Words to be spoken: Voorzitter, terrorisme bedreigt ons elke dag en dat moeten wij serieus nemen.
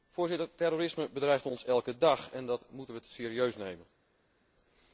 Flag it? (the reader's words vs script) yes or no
no